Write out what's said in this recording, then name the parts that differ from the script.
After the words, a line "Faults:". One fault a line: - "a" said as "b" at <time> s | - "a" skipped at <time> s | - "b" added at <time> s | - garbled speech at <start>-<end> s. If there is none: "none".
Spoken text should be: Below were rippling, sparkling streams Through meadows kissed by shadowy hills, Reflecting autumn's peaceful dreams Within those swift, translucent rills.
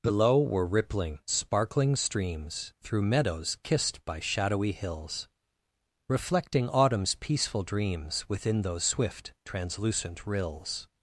Below were rippling, sparkling streams Through meadows kissed by shadowy hills, Reflecting autumn's peaceful dreams Within those swift, translucent rills.
Faults:
none